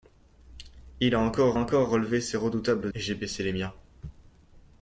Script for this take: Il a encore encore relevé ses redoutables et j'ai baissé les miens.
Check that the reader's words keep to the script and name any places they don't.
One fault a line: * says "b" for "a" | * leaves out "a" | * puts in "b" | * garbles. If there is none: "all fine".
all fine